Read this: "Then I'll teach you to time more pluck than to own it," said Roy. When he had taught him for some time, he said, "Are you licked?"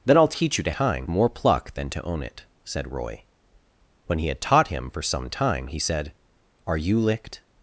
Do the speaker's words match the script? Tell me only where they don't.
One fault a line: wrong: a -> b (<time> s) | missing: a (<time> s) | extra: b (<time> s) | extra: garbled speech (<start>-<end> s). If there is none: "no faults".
no faults